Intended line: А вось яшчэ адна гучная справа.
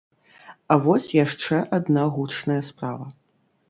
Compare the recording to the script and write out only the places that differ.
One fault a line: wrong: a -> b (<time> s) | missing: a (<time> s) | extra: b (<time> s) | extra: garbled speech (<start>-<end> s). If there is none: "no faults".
no faults